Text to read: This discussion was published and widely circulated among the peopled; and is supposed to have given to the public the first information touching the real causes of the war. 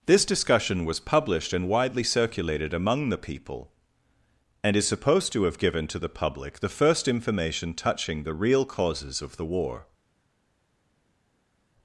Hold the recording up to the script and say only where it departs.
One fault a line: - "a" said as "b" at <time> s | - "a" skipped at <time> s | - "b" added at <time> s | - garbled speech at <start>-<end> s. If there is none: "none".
- "peopled" said as "people" at 3.2 s